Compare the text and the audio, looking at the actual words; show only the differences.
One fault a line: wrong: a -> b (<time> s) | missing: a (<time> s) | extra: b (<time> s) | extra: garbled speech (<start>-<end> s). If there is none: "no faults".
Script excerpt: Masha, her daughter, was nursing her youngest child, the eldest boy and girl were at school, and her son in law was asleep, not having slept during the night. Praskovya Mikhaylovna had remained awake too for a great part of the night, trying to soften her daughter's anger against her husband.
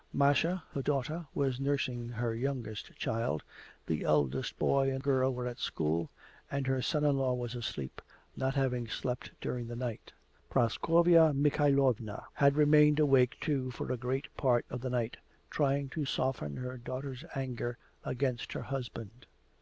no faults